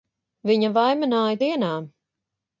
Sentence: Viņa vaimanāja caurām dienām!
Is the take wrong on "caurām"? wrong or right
wrong